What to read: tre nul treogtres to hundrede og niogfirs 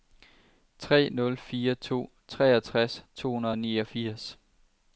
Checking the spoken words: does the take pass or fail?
fail